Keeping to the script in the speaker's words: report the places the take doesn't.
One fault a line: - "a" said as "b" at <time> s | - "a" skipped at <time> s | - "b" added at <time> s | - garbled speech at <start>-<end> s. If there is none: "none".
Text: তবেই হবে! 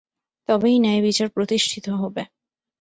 - "ন্যায়বিচার প্রতিষ্ঠিত" added at 0.8 s